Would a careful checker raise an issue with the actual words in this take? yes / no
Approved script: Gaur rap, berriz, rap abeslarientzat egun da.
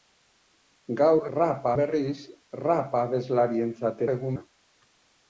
no